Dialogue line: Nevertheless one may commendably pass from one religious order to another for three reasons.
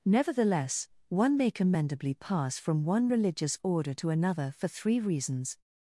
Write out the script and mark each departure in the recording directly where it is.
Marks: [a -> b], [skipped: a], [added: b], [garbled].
Nevertheless one may commendably pass from one religious order to another for three reasons.